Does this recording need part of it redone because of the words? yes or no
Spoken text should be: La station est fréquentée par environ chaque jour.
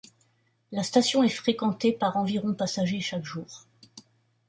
yes